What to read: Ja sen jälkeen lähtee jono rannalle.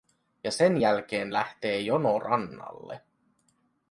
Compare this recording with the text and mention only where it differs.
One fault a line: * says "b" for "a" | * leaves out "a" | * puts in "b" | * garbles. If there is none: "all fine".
all fine